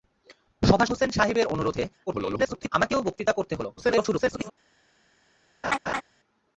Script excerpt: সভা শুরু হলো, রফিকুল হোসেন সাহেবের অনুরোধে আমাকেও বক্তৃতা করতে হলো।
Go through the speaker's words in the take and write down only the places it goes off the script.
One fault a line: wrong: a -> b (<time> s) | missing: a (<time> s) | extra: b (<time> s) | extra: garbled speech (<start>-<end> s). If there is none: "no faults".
missing: শুরু হলো রফিকুল (0.8 s)
extra: garbled speech (2.1-2.7 s)
extra: garbled speech (3.8-4.5 s)